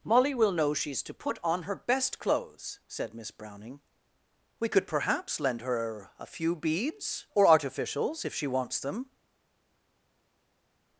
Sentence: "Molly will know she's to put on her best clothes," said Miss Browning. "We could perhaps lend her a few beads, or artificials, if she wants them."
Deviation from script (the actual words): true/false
false